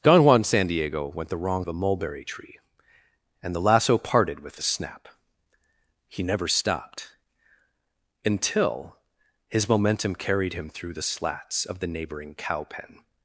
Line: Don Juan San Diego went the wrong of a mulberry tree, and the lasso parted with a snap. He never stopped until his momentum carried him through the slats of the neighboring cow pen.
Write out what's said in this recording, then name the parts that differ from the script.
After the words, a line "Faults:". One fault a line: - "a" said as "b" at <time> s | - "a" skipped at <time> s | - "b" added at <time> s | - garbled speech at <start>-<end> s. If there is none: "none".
Don Juan San Diego went the wrong of a mulberry tree, and the lasso parted with a snap. He never stopped until his momentum carried him through the slats of the neighboring cow pen.
Faults:
none